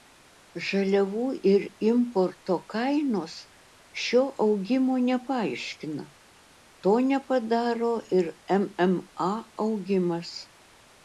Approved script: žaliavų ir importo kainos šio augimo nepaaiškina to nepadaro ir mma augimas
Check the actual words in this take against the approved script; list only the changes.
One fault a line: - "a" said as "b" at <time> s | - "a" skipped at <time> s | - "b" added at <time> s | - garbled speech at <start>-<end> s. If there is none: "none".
none